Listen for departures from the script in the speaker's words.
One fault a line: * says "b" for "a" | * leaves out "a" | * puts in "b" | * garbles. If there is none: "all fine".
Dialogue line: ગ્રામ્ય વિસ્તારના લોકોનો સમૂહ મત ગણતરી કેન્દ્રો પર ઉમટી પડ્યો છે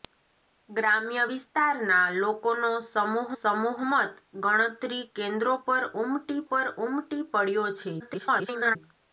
* puts in "સમૂહ"
* puts in "પર ઉમટી"
* garbles